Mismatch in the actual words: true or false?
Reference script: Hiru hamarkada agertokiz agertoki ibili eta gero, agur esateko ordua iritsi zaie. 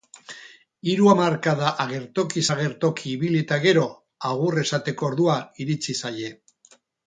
false